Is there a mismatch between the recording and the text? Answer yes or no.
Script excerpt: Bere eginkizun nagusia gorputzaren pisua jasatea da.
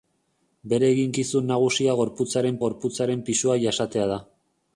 yes